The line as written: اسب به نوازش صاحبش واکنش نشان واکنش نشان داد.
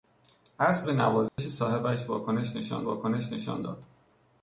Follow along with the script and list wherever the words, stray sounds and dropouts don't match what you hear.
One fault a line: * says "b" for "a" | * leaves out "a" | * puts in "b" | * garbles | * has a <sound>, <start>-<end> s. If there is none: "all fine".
* has a dropout, 1.3-1.4 s